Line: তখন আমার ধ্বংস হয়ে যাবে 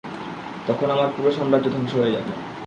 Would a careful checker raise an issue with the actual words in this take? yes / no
yes